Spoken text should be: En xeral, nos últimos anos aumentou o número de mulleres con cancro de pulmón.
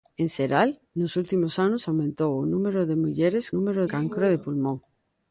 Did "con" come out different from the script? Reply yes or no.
yes